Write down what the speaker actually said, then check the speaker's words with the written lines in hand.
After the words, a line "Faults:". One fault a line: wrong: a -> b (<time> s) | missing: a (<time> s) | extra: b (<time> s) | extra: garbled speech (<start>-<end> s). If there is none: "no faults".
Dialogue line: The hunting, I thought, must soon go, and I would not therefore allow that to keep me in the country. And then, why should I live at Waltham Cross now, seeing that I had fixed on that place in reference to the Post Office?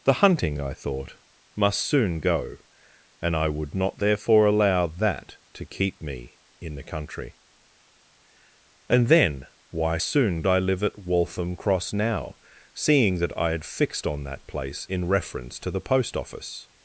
The hunting, I thought, must soon go, and I would not therefore allow that to keep me in the country. And then, why soon I live at Waltham Cross now, seeing that I had fixed on that place in reference to the Post Office?
Faults:
wrong: should -> soon (10.0 s)